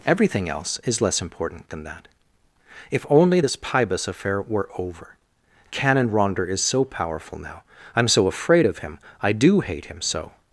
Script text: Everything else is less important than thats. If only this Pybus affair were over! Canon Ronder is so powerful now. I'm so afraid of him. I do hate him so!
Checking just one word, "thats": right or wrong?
wrong